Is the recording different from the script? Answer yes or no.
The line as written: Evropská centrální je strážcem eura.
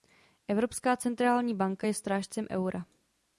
yes